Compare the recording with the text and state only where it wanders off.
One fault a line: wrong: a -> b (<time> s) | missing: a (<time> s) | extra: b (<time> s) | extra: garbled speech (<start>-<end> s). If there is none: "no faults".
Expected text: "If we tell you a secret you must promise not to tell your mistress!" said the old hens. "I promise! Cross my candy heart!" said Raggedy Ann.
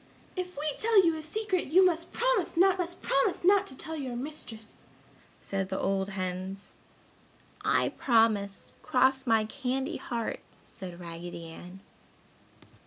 extra: must promise not (2.8 s)